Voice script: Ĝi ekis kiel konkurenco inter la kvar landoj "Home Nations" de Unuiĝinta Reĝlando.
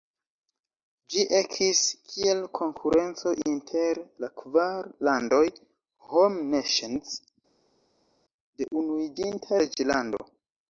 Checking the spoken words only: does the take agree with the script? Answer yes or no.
yes